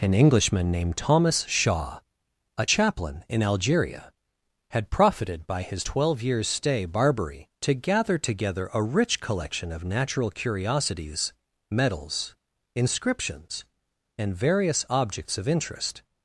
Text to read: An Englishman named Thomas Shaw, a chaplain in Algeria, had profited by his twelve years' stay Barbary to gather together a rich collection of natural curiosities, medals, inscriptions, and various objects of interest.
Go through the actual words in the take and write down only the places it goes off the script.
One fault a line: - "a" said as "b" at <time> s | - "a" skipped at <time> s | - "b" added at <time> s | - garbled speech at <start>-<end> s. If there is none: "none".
none